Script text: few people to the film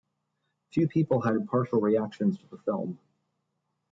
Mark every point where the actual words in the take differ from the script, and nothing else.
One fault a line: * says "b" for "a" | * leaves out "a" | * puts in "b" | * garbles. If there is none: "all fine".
* puts in "had impartial reactions"